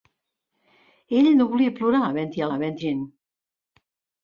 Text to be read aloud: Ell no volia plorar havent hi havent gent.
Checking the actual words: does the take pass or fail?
pass